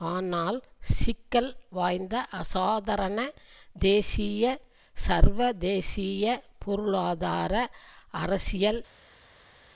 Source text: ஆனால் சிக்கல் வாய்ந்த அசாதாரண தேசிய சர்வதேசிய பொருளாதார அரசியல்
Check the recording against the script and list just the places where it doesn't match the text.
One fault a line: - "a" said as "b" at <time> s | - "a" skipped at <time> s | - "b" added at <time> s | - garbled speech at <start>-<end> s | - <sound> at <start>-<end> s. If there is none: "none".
none